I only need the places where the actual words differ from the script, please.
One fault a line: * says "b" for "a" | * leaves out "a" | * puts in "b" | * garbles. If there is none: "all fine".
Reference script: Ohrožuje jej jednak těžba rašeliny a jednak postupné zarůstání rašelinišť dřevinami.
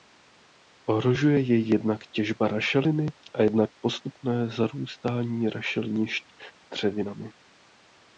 all fine